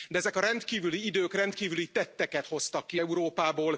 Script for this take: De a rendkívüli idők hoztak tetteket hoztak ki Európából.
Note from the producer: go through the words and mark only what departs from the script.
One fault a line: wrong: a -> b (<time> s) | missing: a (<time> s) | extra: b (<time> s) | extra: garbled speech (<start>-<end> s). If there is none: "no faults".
extra: ezek (0.2 s)
wrong: hoztak -> rendkívüli (1.3 s)